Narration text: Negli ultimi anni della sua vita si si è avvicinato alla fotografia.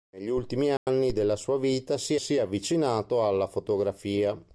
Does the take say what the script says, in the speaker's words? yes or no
yes